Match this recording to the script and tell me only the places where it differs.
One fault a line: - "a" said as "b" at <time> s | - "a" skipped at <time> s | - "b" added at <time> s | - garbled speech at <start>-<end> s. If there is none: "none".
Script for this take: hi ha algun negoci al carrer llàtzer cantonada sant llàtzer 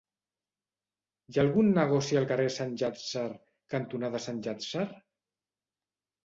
- "sant" added at 2.6 s